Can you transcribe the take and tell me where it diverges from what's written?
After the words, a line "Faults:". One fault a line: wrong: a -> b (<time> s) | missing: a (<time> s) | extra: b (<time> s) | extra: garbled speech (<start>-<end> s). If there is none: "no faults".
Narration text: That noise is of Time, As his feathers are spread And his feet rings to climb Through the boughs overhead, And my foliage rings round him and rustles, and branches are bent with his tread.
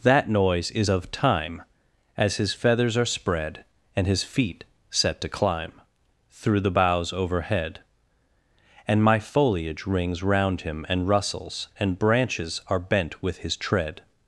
That noise is of Time, As his feathers are spread And his feet set to climb Through the boughs overhead, And my foliage rings round him and rustles, and branches are bent with his tread.
Faults:
wrong: rings -> set (4.9 s)